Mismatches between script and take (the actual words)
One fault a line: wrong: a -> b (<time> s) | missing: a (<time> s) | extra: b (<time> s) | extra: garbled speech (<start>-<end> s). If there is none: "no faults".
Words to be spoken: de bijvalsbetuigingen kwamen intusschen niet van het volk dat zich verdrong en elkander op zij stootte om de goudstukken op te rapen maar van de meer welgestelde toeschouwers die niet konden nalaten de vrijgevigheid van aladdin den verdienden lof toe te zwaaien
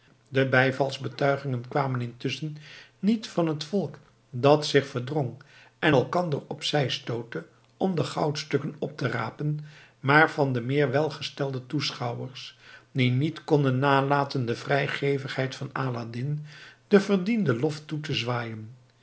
no faults